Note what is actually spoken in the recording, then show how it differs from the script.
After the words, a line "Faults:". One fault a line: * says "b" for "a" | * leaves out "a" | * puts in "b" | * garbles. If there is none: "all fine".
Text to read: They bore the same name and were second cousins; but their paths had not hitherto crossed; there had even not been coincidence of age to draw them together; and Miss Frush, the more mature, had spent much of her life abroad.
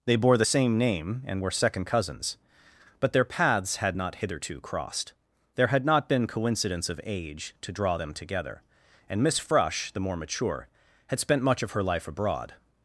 They bore the same name and were second cousins; but their paths had not hitherto crossed; there had not been coincidence of age to draw them together; and Miss Frush, the more mature, had spent much of her life abroad.
Faults:
* leaves out "even"